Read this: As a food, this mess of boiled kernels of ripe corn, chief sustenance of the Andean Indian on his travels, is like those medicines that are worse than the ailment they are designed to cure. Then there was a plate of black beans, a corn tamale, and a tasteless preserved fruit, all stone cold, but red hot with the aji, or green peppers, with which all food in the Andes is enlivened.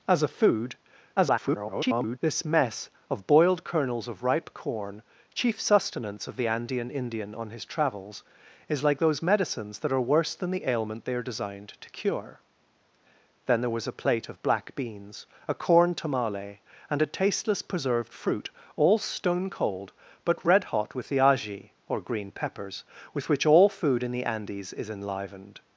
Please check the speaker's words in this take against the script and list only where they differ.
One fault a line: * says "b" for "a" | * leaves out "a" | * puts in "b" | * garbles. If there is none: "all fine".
* garbles